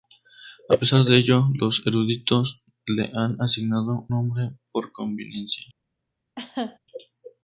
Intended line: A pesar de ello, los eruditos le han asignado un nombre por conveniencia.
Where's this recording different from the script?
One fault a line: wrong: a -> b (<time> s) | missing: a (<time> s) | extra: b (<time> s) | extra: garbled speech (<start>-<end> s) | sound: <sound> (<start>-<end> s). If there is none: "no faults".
missing: un (4.1 s)
sound: laugh (6.4-6.8 s)